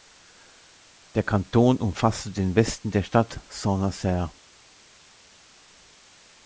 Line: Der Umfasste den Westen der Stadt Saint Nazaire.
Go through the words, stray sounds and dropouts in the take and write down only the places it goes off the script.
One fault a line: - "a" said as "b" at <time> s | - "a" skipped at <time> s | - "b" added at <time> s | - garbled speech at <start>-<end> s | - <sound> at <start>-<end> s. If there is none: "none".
- "Kanton" added at 1.2 s